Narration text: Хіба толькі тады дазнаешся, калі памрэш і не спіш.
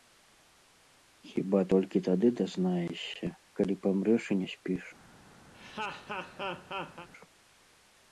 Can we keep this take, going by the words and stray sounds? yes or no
no